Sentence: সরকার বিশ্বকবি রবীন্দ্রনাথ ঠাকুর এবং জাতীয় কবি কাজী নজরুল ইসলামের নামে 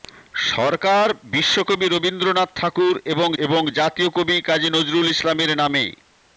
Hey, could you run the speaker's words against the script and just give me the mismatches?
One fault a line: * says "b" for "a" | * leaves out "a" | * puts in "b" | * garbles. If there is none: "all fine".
* puts in "এবং"